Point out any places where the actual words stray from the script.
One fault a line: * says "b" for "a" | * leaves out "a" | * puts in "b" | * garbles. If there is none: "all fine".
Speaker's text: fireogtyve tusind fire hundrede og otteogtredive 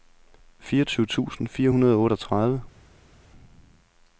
all fine